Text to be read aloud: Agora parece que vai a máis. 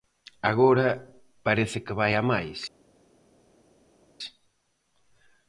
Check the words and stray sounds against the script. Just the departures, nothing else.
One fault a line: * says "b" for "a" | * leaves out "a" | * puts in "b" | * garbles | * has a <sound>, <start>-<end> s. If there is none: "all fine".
all fine